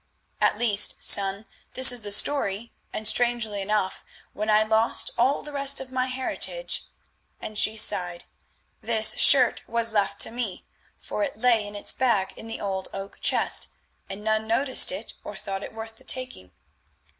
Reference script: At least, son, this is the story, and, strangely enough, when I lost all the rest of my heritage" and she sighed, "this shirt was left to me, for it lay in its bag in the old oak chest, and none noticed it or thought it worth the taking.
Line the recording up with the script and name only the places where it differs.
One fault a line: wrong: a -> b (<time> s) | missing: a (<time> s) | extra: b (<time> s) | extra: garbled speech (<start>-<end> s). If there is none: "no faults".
no faults